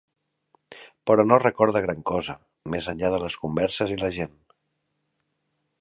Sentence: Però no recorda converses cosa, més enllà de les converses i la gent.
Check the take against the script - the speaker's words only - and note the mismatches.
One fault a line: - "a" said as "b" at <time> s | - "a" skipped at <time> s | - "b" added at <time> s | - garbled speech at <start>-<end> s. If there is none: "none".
- "converses" said as "gran" at 1.9 s